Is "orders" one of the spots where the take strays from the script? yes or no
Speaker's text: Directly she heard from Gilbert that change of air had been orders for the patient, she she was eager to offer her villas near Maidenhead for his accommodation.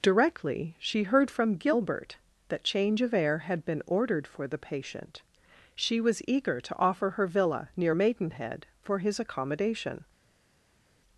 yes